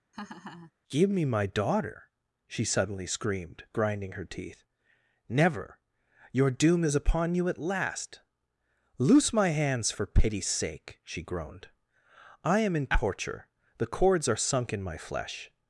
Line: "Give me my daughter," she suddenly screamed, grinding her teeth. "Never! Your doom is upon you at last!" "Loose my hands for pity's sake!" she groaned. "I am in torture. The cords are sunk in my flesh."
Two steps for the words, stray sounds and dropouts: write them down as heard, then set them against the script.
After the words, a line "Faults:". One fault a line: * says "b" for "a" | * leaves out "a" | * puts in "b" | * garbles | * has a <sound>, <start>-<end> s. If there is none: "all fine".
"Give me my daughter," she suddenly screamed, grinding her teeth. "Never! Your doom is upon you at last!" "Loose my hands for pity's sake!" she groaned. "I am in torture. The cords are sunk in my flesh."
Faults:
* has a laugh, 0.1-0.7 s